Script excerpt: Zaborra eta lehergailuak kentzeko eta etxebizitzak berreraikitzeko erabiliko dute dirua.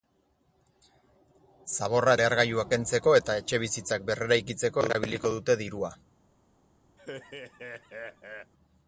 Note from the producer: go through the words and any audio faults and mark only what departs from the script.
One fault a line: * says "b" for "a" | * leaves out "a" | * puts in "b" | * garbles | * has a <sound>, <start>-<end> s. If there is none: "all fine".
* leaves out "eta"
* has a laugh, 7.0-8.5 s